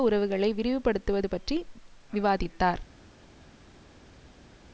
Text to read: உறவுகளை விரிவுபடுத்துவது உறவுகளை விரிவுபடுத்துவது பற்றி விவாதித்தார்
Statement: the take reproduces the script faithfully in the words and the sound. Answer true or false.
false